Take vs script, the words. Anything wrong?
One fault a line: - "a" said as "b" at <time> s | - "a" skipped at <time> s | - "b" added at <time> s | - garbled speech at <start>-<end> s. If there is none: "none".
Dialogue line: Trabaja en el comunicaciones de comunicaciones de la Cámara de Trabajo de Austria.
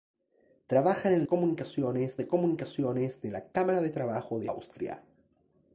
none